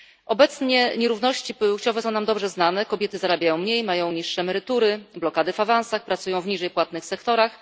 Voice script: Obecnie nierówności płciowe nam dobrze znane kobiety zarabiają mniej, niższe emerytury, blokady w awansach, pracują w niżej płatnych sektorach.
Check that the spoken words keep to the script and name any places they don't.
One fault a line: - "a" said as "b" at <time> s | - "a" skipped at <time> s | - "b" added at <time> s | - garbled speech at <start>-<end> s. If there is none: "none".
- "są" added at 2.0 s
- "mają" added at 3.8 s